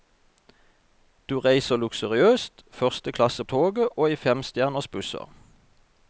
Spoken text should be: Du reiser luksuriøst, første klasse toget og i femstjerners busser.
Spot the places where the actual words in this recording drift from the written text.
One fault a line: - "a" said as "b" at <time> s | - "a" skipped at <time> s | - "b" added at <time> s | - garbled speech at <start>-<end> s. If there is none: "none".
none